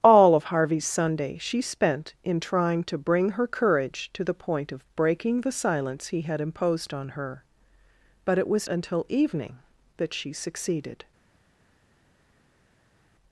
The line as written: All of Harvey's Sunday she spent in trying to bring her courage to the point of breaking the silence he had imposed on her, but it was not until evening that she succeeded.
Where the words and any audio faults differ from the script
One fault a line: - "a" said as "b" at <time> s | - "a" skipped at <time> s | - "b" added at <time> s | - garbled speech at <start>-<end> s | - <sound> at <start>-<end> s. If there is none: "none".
- "not" skipped at 8.7 s